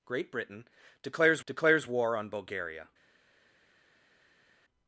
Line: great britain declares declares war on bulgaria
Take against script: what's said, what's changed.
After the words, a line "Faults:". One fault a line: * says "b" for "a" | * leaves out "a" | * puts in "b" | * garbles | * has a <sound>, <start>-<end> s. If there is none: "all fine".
great britain declares declares war on bulgaria
Faults:
all fine